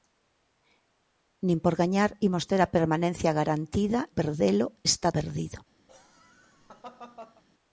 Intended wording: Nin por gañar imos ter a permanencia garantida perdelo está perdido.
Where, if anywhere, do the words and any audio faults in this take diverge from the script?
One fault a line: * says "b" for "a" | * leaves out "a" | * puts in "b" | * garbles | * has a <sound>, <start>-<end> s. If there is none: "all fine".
* has a laugh, 5.9-7.4 s